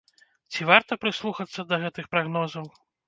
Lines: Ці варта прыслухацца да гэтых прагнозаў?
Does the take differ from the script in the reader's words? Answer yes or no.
no